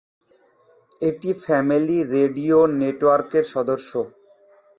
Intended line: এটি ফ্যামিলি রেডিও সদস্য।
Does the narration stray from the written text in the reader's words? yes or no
yes